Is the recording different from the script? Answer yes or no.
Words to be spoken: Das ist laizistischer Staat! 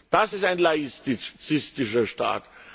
yes